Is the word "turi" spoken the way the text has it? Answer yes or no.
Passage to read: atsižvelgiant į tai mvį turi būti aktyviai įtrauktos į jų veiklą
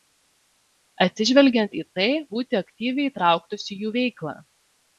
no